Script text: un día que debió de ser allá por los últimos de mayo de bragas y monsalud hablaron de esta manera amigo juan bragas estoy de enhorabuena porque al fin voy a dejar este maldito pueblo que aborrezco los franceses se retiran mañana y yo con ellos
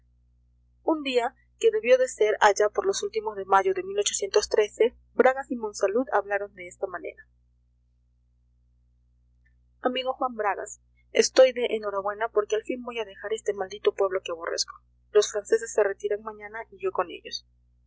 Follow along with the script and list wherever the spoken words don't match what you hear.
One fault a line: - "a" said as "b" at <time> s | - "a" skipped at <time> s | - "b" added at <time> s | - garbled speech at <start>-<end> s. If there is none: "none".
none